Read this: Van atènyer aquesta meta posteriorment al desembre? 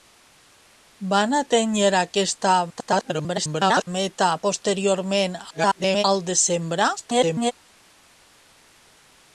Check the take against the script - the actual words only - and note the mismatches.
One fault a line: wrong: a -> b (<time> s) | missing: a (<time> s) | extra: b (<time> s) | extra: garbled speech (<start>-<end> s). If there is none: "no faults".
extra: garbled speech (2.7-3.9 s)
extra: garbled speech (5.5-6.0 s)
extra: garbled speech (7.0-7.5 s)